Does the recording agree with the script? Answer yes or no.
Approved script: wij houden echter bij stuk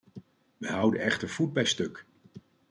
no